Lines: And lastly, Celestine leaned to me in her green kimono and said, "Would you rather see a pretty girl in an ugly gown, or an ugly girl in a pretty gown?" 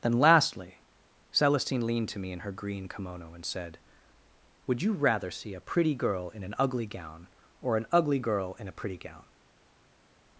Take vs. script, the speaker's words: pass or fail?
fail